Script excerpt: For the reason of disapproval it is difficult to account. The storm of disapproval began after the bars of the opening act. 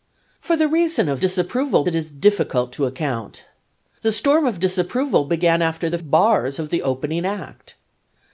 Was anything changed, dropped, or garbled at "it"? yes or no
no